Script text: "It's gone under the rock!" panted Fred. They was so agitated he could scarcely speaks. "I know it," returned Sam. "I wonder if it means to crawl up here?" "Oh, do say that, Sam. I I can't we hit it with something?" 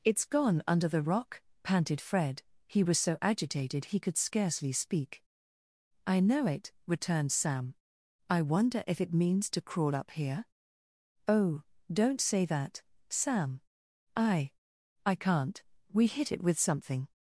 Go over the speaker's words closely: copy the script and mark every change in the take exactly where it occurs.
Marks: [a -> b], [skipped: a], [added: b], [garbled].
"It's gone under the rock!" panted Fred. [They -> He] was so agitated he could scarcely [speaks. -> speak] "I know it," returned Sam. "I wonder if it means to crawl up here?" "Oh, [do -> don't] say that, Sam. I I can't we hit it with something?"